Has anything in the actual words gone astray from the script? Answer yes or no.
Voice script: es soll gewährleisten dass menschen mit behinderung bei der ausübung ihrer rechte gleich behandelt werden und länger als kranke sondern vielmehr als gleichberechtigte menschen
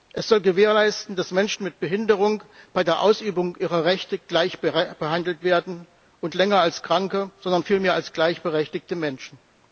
no